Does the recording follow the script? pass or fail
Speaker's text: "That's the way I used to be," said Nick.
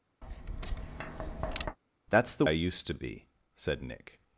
fail